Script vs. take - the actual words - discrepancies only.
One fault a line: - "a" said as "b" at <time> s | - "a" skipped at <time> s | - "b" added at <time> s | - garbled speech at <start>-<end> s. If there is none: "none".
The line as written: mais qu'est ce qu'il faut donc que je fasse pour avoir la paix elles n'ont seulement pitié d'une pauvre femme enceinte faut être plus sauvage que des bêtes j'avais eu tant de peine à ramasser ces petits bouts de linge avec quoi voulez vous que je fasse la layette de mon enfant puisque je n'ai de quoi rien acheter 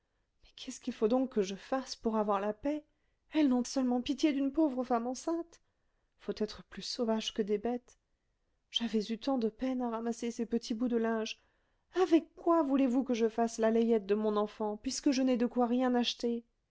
none